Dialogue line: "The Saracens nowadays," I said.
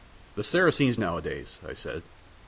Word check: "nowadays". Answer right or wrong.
right